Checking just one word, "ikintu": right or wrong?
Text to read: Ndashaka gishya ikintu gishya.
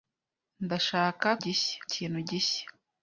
right